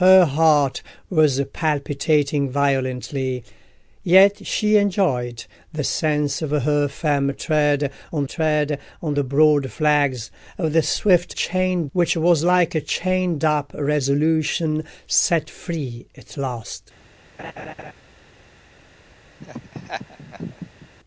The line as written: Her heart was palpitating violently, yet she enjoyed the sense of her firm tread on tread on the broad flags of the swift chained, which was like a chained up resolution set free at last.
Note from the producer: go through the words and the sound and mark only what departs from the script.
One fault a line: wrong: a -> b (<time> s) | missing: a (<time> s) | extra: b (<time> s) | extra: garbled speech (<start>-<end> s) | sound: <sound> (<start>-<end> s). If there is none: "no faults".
sound: laugh (17.4-17.9 s)
sound: laugh (19.4-20.9 s)